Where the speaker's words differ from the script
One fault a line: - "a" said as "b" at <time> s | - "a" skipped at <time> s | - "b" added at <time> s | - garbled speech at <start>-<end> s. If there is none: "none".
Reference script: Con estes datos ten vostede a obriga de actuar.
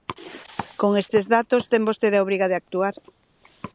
none